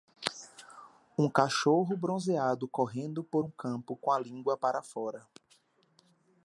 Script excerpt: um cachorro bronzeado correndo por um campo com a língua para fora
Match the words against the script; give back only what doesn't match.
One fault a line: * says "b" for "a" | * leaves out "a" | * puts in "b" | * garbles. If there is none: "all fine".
all fine